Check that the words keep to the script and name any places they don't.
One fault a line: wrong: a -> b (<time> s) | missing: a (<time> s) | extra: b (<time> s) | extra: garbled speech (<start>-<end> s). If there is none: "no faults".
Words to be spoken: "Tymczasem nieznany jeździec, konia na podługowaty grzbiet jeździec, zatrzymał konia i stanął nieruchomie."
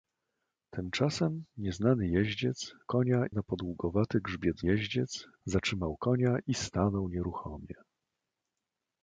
no faults